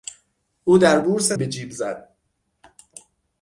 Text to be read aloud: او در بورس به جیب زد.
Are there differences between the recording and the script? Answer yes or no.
no